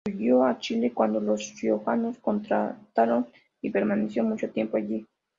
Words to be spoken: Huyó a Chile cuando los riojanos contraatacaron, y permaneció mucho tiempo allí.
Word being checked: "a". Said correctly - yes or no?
yes